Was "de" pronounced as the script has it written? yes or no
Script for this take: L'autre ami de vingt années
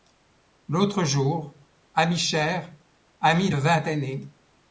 yes